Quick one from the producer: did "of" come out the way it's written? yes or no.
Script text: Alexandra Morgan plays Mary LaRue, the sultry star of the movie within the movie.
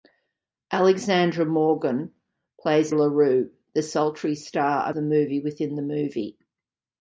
no